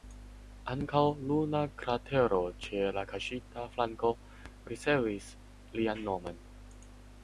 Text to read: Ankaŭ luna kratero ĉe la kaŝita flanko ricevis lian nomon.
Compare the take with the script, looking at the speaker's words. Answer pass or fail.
pass